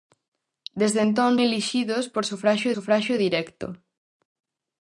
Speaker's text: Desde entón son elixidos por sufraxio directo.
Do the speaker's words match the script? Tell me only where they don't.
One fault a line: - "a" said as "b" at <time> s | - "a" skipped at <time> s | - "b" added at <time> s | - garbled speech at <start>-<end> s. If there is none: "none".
- "son" skipped at 1.3 s
- "sufraxio" added at 2.7 s